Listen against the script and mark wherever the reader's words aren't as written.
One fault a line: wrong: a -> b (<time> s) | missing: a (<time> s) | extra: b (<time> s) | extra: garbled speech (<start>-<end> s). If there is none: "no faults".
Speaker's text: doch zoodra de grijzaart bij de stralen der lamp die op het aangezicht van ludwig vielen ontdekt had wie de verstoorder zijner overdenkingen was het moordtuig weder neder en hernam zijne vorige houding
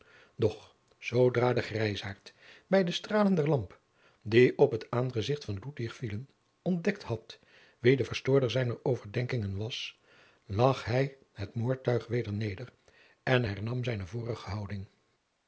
extra: lag hij (10.5 s)